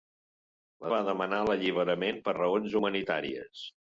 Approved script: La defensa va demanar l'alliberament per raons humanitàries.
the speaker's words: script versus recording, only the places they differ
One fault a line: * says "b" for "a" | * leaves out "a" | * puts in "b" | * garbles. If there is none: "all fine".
* leaves out "defensa"